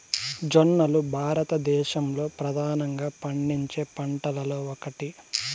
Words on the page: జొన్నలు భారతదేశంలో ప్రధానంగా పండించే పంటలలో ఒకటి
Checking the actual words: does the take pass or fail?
pass